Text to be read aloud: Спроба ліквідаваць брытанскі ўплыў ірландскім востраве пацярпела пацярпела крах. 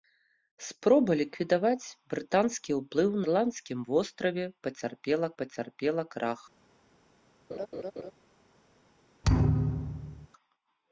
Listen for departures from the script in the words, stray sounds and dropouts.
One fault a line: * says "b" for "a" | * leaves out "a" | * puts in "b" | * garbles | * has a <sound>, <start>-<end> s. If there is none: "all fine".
* has a laugh, 7.5-8.1 s
* has a thud, 9.2-10.3 s